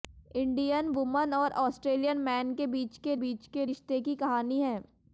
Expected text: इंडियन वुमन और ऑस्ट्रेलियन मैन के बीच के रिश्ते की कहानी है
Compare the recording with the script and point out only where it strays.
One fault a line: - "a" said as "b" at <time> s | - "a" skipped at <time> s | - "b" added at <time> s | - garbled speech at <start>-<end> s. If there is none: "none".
- "बीच के" added at 3.2 s